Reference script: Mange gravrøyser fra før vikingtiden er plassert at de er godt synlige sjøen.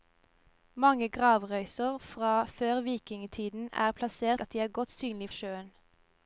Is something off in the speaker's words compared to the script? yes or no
no